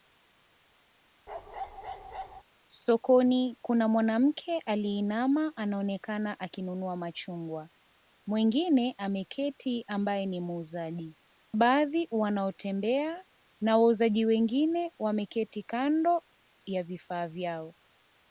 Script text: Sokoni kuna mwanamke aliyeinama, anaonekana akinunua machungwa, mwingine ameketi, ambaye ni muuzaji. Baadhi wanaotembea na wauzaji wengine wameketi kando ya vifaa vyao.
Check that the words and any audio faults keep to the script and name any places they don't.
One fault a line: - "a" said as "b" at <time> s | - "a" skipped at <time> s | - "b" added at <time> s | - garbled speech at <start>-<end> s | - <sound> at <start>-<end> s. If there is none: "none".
- bark at 1.3-2.4 s